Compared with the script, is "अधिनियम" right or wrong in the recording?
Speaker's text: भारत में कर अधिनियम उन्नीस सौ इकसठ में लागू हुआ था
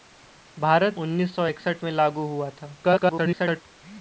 wrong